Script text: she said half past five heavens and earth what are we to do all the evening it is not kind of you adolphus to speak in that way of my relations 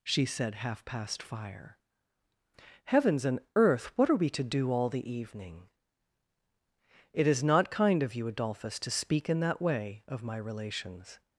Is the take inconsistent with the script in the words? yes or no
yes